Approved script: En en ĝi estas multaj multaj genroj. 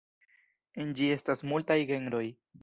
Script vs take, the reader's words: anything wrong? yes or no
yes